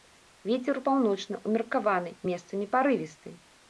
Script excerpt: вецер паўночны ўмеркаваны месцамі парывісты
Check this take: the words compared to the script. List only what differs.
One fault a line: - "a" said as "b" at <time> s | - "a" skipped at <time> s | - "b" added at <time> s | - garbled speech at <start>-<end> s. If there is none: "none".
none